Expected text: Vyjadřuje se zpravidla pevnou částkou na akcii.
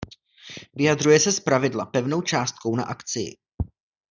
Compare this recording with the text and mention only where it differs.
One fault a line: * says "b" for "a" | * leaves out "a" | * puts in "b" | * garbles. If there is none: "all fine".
all fine